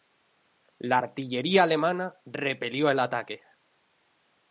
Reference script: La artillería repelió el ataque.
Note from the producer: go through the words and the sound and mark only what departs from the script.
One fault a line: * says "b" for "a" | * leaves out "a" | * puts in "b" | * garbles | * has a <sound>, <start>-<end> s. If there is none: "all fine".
* puts in "alemana"